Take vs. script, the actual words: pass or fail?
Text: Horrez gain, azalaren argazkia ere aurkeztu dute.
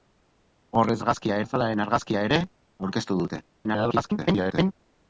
fail